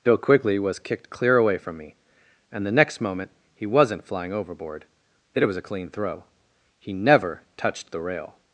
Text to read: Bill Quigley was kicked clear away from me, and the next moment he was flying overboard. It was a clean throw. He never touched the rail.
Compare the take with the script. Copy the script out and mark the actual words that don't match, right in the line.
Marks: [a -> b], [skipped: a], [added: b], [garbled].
Bill Quigley was kicked clear away from me, and the next moment he [was -> wasn't] flying overboard. It was a clean throw. He never touched the rail.